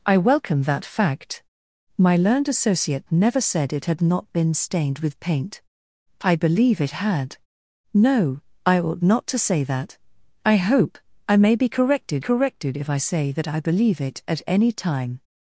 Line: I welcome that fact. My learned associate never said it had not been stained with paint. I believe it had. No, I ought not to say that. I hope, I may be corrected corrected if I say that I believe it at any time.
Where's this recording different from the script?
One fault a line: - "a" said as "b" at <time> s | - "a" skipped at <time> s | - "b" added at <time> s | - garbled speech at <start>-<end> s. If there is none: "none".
none